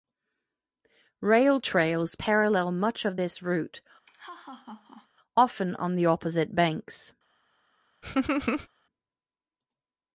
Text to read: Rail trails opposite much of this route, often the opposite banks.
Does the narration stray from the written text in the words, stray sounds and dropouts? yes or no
yes